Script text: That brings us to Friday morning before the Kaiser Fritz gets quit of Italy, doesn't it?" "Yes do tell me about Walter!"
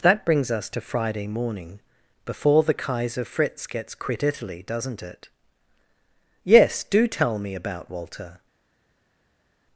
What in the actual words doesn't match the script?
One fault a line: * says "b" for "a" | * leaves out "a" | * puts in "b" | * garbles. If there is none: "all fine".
* leaves out "of"